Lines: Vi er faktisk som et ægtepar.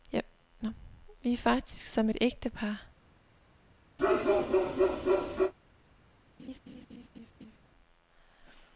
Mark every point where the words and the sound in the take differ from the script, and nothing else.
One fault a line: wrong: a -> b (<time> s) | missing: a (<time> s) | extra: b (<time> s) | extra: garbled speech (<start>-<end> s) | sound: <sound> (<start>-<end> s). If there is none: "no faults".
sound: bark (4.0-5.5 s)
sound: laugh (6.4-7.6 s)